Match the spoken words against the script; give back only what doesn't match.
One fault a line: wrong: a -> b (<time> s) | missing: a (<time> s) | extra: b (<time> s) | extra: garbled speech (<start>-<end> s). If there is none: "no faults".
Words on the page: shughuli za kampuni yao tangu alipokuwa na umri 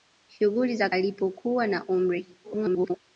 missing: kampuni yao tangu (0.9 s)
extra: garbled speech (2.4-3.0 s)